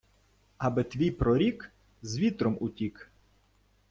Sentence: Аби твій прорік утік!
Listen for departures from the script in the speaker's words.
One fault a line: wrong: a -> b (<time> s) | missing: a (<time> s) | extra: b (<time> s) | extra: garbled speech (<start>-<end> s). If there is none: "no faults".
extra: з вітром (2.0 s)